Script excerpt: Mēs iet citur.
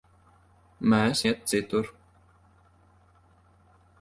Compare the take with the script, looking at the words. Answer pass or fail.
pass